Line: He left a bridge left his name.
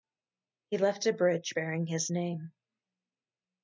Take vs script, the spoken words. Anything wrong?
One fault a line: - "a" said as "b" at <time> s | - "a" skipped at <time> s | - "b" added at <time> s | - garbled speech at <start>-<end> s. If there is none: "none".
- "left" said as "bearing" at 1.5 s